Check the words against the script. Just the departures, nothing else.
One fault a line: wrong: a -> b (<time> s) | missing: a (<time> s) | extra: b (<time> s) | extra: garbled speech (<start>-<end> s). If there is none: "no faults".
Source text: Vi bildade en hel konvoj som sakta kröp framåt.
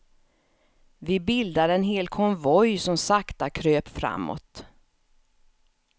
no faults